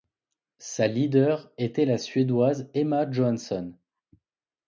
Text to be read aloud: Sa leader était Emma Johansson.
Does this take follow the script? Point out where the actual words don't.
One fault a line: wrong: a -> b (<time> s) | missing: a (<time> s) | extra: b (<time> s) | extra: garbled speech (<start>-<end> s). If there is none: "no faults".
extra: la Suédoise (1.9 s)